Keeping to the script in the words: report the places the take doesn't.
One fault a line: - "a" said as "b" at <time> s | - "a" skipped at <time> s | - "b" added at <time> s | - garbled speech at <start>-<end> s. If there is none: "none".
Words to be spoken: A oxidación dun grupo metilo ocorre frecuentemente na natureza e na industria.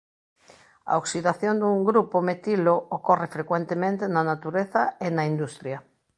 none